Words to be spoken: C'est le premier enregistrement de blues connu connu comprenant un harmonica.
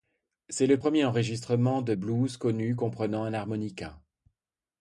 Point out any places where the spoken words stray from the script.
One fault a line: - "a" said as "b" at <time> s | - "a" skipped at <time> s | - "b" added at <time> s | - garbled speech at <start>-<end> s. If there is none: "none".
- "connu" skipped at 2.8 s